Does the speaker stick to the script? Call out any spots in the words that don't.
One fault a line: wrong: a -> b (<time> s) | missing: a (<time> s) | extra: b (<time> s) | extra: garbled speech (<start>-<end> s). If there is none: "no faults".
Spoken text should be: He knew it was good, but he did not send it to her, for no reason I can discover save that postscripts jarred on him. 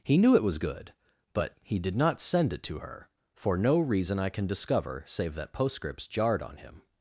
no faults